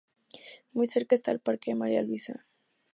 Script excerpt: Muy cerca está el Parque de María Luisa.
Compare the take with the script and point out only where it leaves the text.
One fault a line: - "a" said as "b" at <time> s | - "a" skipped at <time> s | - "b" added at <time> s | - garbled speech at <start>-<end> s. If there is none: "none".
none